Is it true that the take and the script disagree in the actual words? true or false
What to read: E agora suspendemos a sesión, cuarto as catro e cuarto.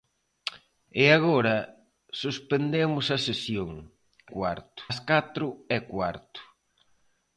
false